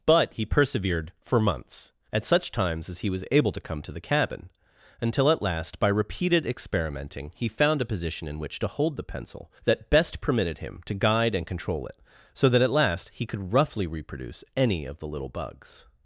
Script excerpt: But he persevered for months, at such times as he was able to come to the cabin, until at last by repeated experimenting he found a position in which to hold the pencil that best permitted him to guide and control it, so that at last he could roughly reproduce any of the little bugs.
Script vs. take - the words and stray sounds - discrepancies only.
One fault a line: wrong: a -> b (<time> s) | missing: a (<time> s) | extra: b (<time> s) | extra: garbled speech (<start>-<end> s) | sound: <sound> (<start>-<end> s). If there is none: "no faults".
no faults